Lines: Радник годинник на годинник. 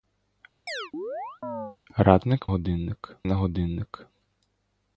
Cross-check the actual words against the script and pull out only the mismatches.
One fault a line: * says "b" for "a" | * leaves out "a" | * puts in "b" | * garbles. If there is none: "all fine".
all fine